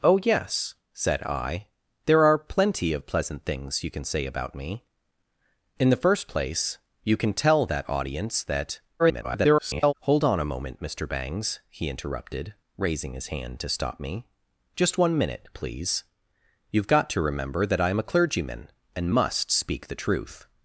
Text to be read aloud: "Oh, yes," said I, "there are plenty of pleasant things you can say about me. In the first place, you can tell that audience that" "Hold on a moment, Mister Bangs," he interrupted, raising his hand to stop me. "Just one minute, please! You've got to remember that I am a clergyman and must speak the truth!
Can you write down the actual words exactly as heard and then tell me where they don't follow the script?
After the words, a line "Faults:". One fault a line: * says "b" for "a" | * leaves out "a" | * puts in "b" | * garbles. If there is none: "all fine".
"Oh, yes," said I, "there are plenty of pleasant things you can say about me. In the first place, you can tell that audience that" [garbled] "Hold on a moment, Mister Bangs," he interrupted, raising his hand to stop me. "Just one minute, please! You've got to remember that I am a clergyman and must speak the truth!
Faults:
* garbles